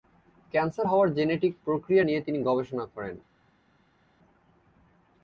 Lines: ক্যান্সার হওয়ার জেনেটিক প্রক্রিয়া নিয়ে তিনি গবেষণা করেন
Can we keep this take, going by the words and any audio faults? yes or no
yes